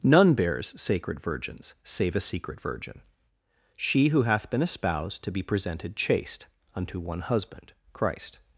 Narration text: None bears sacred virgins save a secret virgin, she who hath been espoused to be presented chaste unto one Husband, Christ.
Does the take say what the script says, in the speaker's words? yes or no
yes